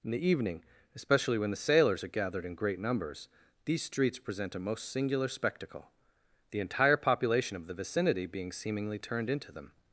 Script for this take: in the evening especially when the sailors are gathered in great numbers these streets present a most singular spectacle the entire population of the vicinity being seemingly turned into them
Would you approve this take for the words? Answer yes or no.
yes